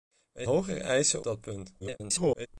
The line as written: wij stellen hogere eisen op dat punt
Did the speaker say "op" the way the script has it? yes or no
no